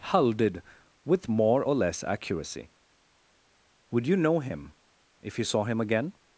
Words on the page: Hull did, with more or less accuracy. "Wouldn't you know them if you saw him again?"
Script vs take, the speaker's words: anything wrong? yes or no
yes